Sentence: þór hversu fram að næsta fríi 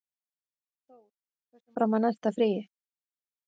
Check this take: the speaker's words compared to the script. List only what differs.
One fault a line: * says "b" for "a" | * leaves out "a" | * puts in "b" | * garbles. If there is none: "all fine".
all fine